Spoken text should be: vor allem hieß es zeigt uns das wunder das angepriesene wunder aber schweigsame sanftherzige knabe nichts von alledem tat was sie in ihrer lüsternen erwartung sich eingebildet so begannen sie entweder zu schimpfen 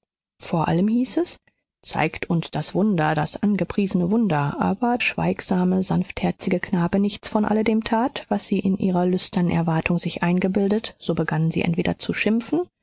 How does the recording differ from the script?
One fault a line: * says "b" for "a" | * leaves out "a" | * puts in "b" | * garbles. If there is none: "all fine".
all fine